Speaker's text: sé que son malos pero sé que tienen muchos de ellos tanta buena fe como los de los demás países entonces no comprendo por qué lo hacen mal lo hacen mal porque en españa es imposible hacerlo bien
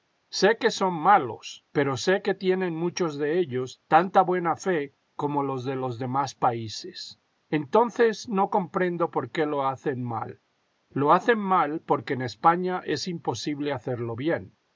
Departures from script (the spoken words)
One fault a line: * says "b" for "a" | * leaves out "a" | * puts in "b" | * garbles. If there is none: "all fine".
all fine